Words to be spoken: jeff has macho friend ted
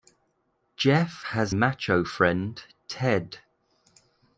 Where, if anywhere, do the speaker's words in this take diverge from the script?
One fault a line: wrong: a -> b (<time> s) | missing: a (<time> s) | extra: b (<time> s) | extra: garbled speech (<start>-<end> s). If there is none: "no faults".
no faults